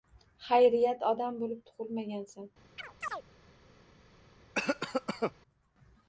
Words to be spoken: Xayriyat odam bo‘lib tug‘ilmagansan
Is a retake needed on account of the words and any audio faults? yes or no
yes